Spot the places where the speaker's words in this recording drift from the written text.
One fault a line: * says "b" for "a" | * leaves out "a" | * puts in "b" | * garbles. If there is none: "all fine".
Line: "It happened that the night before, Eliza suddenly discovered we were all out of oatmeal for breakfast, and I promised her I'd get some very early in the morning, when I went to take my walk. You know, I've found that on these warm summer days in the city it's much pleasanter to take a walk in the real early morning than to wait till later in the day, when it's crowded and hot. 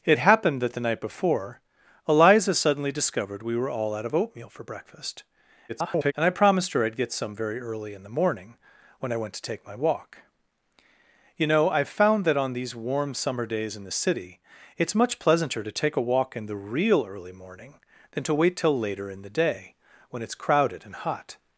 * garbles